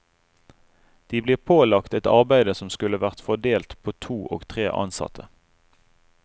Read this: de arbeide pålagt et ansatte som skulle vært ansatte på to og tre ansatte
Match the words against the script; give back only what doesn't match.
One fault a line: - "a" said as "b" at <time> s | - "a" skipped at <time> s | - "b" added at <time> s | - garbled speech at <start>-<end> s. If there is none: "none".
- "arbeide" said as "blir" at 1.2 s
- "ansatte" said as "arbeide" at 2.1 s
- "ansatte" said as "fordelt" at 3.3 s